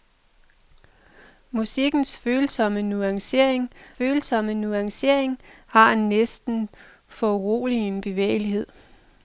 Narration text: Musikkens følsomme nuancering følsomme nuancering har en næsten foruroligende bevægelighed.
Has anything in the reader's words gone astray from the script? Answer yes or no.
no